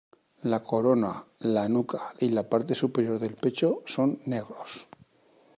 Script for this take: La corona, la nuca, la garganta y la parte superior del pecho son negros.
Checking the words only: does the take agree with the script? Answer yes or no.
no